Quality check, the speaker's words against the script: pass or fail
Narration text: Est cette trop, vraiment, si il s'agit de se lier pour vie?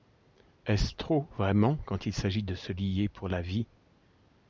fail